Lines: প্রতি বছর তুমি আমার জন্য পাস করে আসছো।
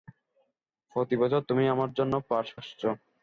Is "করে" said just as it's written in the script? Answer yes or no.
no